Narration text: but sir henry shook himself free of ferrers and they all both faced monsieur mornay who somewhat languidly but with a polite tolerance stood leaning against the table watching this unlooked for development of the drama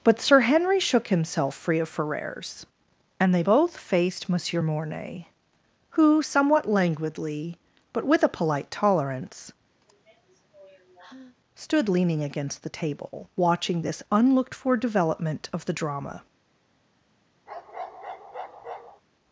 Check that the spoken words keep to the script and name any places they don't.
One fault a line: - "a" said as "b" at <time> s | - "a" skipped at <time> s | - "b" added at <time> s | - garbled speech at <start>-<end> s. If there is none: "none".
- "all" skipped at 3.4 s